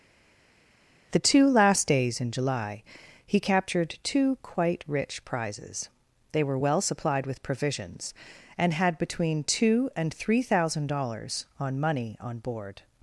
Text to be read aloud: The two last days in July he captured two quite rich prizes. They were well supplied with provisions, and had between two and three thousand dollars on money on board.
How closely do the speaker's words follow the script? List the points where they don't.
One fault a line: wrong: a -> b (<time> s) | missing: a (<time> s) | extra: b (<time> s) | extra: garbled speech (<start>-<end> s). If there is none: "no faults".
no faults